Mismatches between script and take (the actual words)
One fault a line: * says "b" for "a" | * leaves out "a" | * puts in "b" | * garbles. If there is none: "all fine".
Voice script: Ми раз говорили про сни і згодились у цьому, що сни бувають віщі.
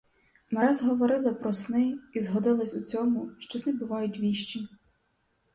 all fine